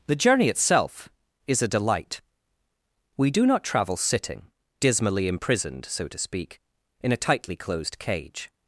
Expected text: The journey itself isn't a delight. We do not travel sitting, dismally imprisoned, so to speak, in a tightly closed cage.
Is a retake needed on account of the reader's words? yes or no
yes